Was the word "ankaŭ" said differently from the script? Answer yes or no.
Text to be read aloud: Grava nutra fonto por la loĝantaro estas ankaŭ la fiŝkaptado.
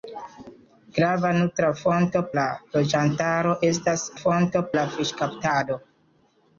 yes